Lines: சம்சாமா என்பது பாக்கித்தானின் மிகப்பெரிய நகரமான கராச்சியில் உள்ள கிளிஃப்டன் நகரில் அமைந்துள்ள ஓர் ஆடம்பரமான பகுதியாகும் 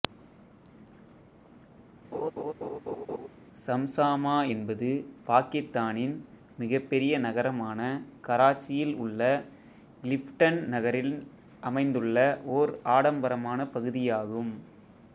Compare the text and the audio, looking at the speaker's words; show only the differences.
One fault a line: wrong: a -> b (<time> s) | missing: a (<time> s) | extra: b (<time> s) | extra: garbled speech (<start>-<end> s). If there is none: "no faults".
no faults